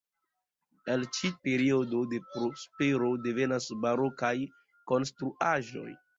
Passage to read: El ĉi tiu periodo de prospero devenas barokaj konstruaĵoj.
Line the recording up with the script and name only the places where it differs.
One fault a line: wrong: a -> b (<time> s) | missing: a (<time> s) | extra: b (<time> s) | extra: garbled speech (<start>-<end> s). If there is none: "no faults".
missing: tiu (1.3 s)